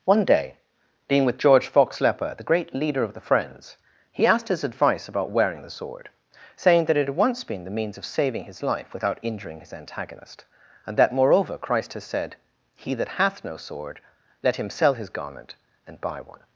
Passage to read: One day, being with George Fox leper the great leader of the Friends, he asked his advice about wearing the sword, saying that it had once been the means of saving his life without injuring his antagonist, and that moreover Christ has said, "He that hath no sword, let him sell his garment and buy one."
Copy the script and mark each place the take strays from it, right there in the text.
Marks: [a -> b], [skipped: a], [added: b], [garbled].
One day, being with George Fox leper the great leader of the Friends, he asked his advice about wearing the sword, saying that it had once been the means of saving his life without injuring his antagonist, and that moreover Christ has said, "He that hath no sword, let him sell his garment and buy one."